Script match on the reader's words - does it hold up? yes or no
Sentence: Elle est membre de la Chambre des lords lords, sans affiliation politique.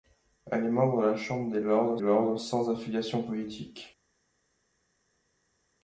yes